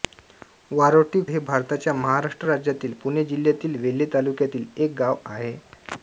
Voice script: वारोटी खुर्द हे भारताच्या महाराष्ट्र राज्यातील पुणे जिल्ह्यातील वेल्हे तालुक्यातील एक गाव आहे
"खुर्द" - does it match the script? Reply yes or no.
no